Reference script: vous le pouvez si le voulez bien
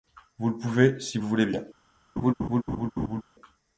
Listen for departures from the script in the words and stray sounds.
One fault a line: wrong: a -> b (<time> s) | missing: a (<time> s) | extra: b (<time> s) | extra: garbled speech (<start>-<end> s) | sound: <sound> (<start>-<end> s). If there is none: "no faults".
sound: laugh (2.2-3.2 s)